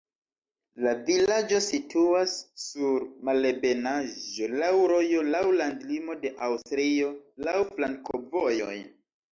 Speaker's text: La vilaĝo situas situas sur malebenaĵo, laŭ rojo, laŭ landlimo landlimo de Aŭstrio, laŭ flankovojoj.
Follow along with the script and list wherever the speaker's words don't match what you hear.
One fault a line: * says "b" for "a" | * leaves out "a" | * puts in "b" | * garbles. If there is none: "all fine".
* leaves out "situas"
* leaves out "landlimo"